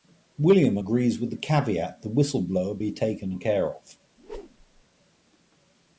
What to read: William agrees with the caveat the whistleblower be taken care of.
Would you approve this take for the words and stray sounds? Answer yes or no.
no